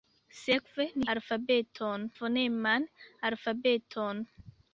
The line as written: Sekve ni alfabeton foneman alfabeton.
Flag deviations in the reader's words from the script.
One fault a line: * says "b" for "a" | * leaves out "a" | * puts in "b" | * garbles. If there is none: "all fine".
all fine